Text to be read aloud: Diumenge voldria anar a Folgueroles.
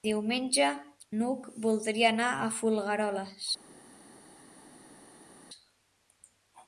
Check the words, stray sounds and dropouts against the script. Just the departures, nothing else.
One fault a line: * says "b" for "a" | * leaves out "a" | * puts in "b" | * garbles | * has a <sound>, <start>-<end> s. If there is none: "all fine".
* puts in "n'Hug"